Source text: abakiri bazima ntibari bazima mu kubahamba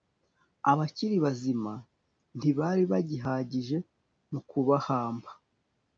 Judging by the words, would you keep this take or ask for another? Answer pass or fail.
fail